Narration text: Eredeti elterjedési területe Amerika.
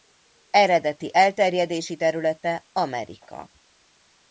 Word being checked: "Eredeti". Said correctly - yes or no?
yes